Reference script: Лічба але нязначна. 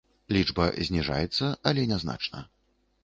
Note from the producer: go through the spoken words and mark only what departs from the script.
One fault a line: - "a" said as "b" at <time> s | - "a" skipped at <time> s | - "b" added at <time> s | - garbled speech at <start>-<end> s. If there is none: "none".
- "зніжаецца" added at 0.9 s